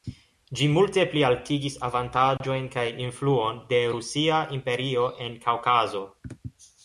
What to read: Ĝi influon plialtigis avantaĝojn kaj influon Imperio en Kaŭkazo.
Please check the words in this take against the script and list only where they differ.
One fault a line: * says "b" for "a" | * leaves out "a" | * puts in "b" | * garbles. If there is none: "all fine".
* says "multe" for "influon"
* puts in "de Rusia"